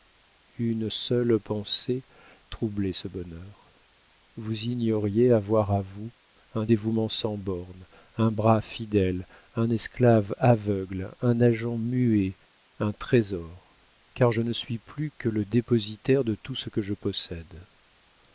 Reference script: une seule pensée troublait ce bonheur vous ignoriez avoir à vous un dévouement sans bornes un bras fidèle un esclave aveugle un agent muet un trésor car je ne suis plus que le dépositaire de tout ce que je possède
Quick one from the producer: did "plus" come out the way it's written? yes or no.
yes